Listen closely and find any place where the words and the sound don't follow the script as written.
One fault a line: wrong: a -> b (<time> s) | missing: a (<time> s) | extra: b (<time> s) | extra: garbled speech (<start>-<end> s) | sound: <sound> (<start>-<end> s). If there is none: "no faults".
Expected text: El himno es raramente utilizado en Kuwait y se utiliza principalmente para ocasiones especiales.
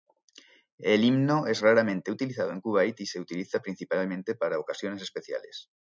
no faults